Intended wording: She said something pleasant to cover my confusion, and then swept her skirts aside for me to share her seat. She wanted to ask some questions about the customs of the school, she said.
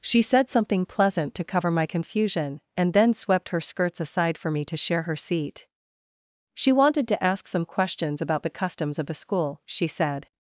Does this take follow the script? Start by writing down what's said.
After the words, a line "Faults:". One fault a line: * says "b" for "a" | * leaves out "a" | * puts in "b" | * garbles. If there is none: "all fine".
She said something pleasant to cover my confusion, and then swept her skirts aside for me to share her seat. She wanted to ask some questions about the customs of the school, she said.
Faults:
all fine